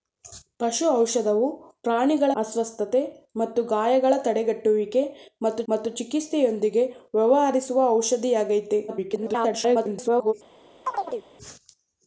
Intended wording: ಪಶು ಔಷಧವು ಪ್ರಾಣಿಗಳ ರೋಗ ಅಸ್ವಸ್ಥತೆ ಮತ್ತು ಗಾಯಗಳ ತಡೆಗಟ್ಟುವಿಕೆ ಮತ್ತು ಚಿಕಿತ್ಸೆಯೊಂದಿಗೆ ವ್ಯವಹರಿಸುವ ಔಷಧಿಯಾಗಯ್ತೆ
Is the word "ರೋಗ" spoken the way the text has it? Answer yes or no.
no